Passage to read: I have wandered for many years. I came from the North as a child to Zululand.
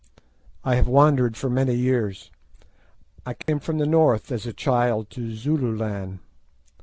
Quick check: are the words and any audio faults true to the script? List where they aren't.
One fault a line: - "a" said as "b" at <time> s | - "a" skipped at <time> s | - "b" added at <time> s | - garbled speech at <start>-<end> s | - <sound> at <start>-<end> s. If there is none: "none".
- dropout at 3.4-3.5 s